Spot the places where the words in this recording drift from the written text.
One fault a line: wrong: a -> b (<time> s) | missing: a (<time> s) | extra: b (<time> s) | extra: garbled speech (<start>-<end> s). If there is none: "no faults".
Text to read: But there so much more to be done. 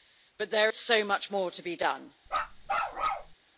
no faults